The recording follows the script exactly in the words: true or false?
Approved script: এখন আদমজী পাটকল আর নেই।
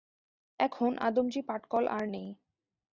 true